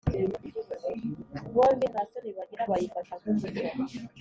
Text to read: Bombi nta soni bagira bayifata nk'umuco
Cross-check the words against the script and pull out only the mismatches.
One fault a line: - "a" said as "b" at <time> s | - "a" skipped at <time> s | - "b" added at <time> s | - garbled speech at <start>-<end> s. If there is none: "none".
none